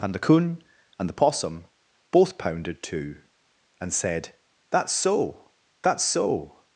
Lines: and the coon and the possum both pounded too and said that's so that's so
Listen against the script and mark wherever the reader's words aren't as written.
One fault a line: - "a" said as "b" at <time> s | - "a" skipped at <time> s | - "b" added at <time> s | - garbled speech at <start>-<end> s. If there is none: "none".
none